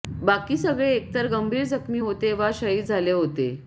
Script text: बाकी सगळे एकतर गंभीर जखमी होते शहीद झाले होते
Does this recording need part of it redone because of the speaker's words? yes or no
yes